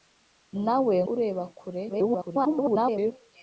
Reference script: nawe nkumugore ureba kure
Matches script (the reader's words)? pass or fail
fail